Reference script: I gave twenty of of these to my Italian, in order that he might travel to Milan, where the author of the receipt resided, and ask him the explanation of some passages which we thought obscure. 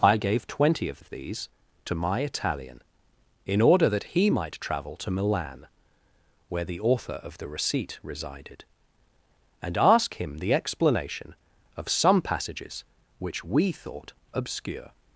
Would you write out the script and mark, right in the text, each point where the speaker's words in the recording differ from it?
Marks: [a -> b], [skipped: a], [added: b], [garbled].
I gave twenty of of these to my Italian, in order that he might travel to Milan, where the author of the receipt resided, and ask him the explanation of some passages which we thought obscure.